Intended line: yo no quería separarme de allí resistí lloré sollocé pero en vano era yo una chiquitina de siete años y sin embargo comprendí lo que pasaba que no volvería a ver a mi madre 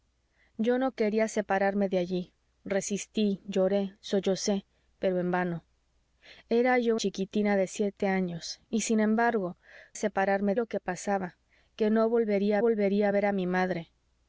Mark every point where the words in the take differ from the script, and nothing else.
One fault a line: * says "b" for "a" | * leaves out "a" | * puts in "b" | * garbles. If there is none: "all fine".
* leaves out "una"
* says "separarme" for "comprendí"
* puts in "volvería"